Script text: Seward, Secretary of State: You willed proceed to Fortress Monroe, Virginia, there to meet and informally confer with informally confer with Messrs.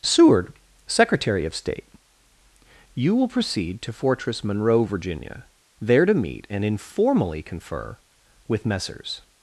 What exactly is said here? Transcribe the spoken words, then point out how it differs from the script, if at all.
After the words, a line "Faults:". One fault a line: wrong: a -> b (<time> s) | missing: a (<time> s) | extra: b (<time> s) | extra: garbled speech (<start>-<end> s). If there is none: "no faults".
Seward, Secretary of State: You will proceed to Fortress Monroe, Virginia, there to meet and informally confer with Messrs.
Faults:
wrong: willed -> will (3.1 s)
missing: informally confer with (8.6 s)